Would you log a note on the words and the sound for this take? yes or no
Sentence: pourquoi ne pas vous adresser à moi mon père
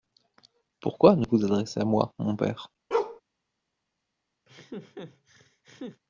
yes